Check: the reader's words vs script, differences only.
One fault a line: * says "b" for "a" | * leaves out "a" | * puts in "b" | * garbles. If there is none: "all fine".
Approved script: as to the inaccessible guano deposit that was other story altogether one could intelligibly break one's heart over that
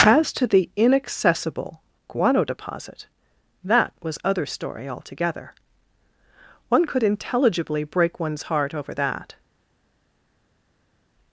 all fine